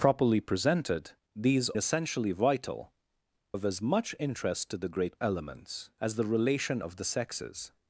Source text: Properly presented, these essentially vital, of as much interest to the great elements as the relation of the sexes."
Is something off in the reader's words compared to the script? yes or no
no